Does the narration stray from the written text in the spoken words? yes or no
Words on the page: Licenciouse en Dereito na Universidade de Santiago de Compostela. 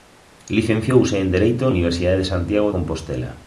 yes